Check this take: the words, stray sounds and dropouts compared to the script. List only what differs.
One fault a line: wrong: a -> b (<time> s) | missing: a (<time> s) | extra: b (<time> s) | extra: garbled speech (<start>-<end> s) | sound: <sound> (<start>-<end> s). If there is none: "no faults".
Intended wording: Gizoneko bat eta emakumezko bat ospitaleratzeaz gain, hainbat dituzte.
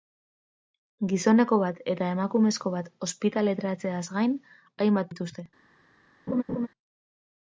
sound: laugh (6.3-6.7 s)